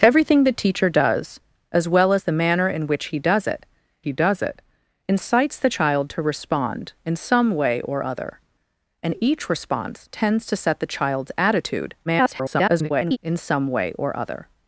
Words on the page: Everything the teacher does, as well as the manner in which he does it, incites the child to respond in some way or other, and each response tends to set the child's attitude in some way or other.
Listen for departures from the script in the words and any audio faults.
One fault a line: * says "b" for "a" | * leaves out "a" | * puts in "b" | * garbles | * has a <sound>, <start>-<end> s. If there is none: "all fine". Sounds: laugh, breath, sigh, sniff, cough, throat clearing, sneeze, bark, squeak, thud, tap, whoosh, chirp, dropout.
* puts in "he does it"
* garbles